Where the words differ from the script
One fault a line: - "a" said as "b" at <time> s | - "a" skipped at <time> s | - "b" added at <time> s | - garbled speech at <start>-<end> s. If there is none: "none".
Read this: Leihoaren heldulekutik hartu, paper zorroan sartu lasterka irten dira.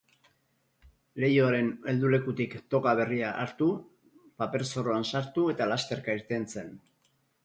- "toga berria" added at 2.8 s
- "eta" added at 5.5 s
- "dira" said as "zen" at 6.5 s